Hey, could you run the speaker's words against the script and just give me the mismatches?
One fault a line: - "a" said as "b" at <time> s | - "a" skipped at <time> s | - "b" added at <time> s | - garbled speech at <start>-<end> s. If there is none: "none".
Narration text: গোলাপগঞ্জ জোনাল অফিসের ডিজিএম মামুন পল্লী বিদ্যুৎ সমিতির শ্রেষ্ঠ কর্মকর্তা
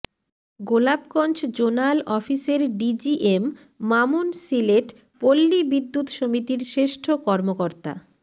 - "সিলেট" added at 4.4 s